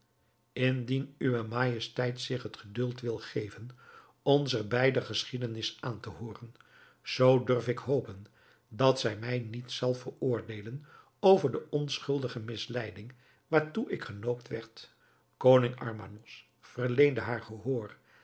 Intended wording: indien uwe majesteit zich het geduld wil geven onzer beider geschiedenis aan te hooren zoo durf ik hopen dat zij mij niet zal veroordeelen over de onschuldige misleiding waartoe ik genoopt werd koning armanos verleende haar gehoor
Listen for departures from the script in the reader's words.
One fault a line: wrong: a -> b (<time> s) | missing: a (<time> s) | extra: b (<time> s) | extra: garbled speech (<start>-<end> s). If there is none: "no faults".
no faults